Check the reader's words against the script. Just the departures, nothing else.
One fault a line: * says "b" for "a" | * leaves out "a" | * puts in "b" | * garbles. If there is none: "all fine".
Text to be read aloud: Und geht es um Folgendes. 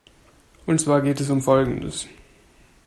* puts in "zwar"